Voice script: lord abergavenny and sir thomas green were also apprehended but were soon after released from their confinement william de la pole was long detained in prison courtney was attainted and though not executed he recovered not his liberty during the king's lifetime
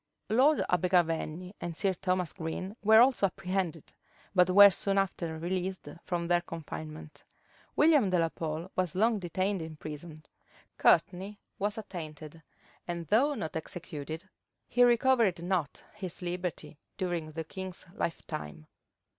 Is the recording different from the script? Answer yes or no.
no